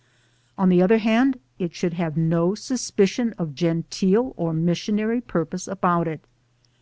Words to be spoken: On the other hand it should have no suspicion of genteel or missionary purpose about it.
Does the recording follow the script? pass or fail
pass